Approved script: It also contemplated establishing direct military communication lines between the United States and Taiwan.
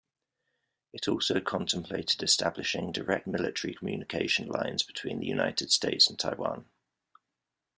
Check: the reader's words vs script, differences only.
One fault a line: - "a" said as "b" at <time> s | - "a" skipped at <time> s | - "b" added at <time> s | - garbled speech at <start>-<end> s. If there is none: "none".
none